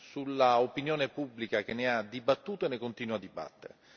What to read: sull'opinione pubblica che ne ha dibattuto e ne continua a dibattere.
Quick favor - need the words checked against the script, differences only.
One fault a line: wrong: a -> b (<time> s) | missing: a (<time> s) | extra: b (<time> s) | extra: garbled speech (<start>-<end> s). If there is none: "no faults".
no faults